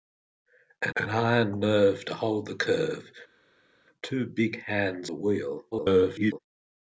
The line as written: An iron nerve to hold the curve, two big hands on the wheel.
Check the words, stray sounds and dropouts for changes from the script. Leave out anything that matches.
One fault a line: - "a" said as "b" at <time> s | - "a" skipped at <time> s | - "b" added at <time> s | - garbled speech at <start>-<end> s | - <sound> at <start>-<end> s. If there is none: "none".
- "an" added at 0.9 s
- "on" skipped at 5.1 s
- garbled speech at 5.7-6.4 s